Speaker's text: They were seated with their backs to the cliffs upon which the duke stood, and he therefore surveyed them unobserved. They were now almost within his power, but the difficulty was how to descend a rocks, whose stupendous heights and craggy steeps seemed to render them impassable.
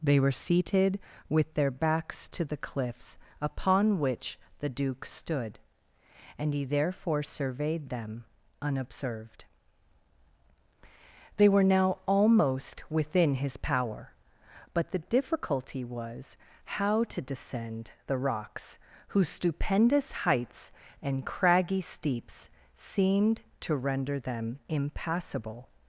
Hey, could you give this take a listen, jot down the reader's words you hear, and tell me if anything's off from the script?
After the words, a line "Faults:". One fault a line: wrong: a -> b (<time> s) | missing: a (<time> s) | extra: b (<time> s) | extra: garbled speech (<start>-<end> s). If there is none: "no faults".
They were seated with their backs to the cliffs upon which the duke stood, and he therefore surveyed them unobserved. They were now almost within his power, but the difficulty was how to descend the rocks, whose stupendous heights and craggy steeps seemed to render them impassable.
Faults:
wrong: a -> the (18.1 s)